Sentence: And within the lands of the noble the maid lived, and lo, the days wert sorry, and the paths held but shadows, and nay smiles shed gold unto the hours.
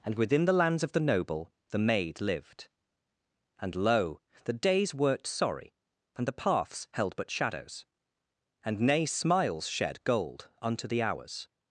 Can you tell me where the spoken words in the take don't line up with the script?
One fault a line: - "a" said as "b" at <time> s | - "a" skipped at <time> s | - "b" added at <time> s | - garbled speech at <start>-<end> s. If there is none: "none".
- "wert" said as "worked" at 4.9 s